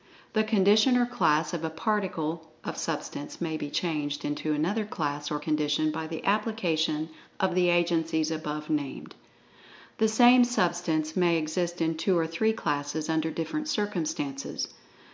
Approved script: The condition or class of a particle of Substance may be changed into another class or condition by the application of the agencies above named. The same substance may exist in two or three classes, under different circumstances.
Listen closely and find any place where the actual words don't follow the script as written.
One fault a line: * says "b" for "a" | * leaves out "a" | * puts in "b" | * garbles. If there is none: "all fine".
all fine